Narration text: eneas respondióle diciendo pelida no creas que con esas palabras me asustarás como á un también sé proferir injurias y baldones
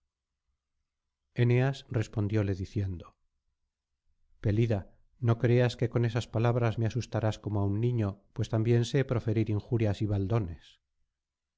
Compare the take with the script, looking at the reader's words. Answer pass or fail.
fail